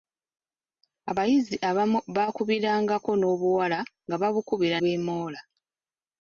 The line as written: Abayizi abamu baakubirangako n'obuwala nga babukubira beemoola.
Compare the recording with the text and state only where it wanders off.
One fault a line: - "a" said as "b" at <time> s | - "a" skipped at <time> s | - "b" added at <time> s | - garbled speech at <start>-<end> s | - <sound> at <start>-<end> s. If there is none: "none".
none